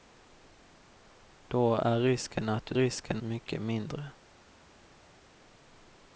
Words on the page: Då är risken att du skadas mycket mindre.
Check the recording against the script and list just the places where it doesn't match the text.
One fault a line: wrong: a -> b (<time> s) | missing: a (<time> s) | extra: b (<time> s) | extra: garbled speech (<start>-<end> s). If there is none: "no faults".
wrong: skadas -> risken (2.7 s)